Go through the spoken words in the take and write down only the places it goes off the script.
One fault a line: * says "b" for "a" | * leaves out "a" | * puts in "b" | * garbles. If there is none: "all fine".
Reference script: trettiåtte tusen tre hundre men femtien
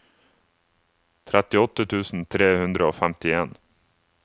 * says "og" for "men"